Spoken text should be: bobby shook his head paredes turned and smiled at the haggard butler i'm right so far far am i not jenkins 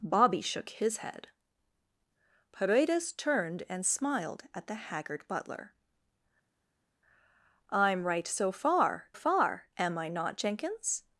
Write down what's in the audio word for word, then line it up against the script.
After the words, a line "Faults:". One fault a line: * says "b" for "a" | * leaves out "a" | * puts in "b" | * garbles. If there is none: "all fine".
bobby shook his head paredes turned and smiled at the haggard butler i'm right so far far am i not jenkins
Faults:
all fine